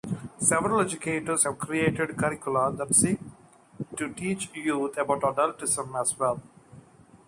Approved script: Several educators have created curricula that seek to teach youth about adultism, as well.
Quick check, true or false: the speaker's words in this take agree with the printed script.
true